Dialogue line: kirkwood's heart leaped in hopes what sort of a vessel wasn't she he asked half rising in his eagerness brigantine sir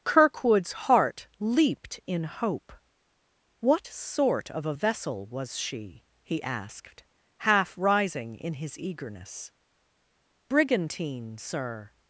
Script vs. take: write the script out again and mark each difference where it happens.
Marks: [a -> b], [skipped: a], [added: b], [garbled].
kirkwood's heart leaped in [hopes -> hope] what sort of a vessel [wasn't -> was] she he asked half rising in his eagerness brigantine sir